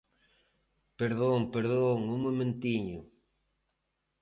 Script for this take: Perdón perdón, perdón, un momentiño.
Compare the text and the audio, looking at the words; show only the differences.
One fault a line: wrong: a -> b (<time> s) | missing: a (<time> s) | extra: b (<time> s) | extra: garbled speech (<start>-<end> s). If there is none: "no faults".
missing: perdón (2.0 s)